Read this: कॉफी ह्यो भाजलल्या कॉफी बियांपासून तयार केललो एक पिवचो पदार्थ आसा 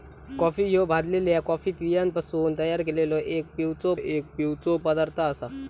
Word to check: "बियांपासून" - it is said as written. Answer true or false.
true